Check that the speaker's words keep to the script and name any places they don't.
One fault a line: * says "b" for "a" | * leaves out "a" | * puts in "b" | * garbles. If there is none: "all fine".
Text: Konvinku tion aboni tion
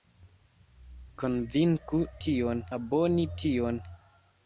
all fine